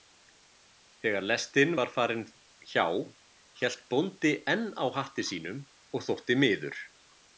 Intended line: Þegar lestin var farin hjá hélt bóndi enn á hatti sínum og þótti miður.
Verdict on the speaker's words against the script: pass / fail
pass